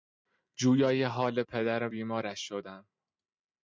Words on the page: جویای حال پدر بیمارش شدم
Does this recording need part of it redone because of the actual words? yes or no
no